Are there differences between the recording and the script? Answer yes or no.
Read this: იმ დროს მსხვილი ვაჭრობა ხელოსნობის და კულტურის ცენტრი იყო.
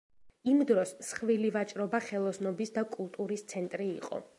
no